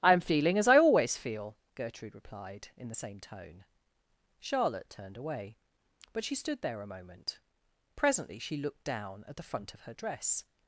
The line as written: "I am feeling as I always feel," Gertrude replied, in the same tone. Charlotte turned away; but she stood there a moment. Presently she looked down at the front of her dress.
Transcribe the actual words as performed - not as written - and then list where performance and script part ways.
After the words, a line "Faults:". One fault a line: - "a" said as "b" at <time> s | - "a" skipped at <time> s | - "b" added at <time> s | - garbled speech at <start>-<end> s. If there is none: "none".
"I am feeling as I always feel," Gertrude replied, in the same tone. Charlotte turned away; but she stood there a moment. Presently she looked down at the front of her dress.
Faults:
none